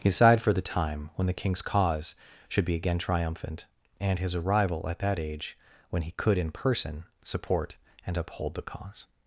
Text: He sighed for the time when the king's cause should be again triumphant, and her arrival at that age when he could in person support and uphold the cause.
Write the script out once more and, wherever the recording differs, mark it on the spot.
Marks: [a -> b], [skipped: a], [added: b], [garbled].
He sighed for the time when the king's cause should be again triumphant, and [her -> his] arrival at that age when he could in person support and uphold the cause.